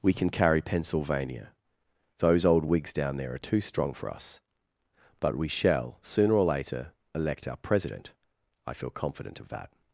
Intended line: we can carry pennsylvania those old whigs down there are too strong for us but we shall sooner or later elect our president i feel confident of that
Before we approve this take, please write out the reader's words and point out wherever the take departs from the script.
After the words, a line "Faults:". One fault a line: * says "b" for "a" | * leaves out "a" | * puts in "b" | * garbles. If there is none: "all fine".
we can carry pennsylvania those old whigs down there are too strong for us but we shall sooner or later elect our president i feel confident of that
Faults:
all fine